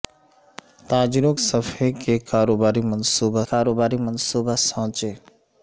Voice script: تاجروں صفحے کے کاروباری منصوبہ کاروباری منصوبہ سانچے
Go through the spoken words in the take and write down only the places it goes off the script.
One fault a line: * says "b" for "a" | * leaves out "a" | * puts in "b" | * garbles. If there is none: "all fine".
all fine